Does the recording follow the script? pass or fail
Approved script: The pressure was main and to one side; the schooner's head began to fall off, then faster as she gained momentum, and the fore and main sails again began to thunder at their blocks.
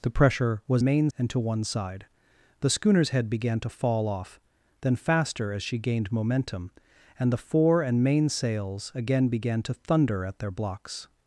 pass